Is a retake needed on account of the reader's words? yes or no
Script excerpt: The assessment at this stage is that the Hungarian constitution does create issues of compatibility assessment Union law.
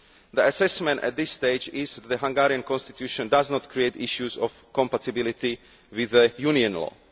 yes